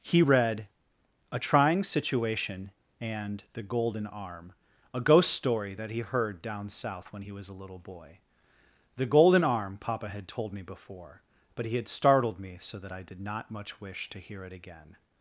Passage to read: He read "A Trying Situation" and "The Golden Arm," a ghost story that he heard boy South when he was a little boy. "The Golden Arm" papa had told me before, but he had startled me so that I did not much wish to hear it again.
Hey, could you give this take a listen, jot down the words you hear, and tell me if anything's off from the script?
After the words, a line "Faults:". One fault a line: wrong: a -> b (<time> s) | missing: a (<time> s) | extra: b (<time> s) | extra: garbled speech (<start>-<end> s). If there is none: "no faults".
He read "A Trying Situation" and "The Golden Arm," a ghost story that he heard down South when he was a little boy. "The Golden Arm" papa had told me before, but he had startled me so that I did not much wish to hear it again.
Faults:
wrong: boy -> down (6.4 s)